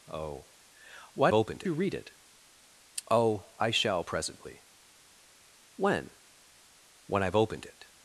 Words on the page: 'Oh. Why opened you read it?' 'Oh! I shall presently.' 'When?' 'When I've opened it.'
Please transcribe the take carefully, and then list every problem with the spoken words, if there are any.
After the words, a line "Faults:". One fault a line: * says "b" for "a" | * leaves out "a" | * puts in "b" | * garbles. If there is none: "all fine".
'Oh. Why opened you read it?' 'Oh! I shall presently.' 'When?' 'When I've opened it.'
Faults:
all fine